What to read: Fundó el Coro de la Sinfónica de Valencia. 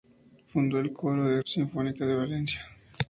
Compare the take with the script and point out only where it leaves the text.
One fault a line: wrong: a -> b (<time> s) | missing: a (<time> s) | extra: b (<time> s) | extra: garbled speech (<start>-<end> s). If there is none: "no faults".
no faults